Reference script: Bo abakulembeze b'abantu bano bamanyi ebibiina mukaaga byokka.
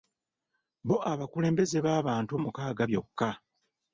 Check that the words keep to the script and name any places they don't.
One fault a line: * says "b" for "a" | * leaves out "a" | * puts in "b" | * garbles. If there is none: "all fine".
* leaves out "bano bamanyi ebibiina"